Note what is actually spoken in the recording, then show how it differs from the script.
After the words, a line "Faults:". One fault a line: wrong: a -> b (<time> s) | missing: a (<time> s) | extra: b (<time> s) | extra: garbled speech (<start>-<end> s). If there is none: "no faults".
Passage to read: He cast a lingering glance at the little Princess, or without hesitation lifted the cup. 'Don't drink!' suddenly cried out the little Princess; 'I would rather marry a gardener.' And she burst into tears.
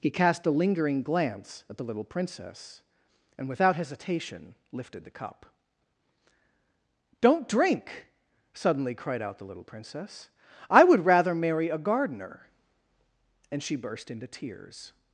He cast a lingering glance at the little Princess, and without hesitation lifted the cup. 'Don't drink!' suddenly cried out the little Princess; 'I would rather marry a gardener.' And she burst into tears.
Faults:
wrong: or -> and (3.4 s)